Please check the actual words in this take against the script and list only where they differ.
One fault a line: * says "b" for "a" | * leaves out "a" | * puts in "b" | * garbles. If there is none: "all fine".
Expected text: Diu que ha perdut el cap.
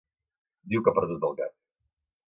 all fine